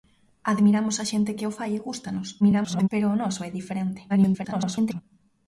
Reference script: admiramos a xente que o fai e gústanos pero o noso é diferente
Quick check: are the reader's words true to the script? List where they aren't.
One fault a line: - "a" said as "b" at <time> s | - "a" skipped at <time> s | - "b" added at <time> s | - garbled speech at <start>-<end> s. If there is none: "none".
- garbled speech at 2.4-2.9 s
- garbled speech at 4.1-5.0 s